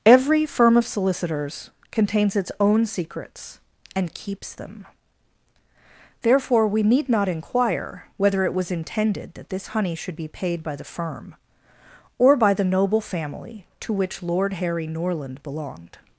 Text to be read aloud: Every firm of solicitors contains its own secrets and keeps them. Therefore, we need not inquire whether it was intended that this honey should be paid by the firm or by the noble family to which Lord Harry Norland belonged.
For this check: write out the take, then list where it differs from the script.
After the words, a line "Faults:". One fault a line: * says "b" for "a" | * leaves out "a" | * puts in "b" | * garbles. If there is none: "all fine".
Every firm of solicitors contains its own secrets and keeps them. Therefore, we need not inquire whether it was intended that this honey should be paid by the firm or by the noble family to which Lord Harry Norland belonged.
Faults:
all fine